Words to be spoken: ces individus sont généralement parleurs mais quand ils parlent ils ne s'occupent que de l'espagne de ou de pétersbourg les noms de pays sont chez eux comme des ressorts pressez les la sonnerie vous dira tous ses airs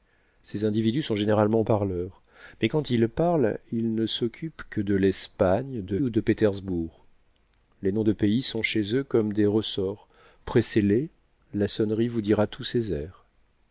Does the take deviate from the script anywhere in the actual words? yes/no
no